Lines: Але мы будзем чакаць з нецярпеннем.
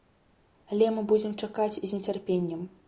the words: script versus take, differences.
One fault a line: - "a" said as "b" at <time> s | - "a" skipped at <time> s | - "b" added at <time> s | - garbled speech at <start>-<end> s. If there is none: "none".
none